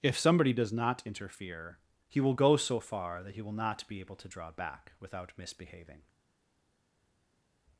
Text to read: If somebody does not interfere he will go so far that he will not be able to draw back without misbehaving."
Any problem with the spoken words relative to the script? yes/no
no